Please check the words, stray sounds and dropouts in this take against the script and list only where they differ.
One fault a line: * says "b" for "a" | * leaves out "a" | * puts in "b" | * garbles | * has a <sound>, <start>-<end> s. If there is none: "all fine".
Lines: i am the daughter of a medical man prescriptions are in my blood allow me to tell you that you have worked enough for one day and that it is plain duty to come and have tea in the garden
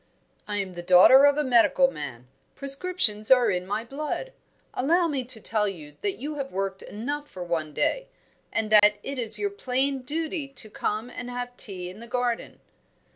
* has a dropout, 8.8-8.8 s
* puts in "your"